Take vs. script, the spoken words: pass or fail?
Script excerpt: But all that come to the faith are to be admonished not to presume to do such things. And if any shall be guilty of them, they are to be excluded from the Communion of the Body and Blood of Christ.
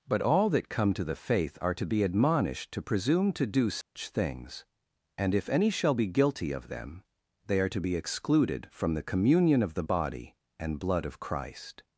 fail